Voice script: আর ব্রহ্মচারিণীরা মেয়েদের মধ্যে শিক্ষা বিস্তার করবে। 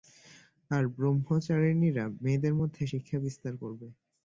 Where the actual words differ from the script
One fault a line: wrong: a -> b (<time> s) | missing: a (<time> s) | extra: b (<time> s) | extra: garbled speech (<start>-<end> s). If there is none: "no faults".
no faults